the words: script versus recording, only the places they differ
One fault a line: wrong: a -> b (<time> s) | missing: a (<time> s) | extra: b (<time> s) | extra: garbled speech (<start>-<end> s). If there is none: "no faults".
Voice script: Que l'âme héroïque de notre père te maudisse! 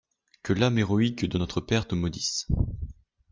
no faults